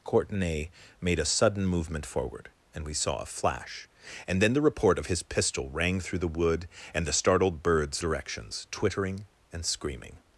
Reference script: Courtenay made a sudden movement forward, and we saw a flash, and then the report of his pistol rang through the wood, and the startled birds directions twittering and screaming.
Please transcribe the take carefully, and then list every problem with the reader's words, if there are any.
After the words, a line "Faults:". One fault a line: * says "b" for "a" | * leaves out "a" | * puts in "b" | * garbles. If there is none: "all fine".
Courtenay made a sudden movement forward, and we saw a flash, and then the report of his pistol rang through the wood, and the startled birds directions twittering and screaming.
Faults:
all fine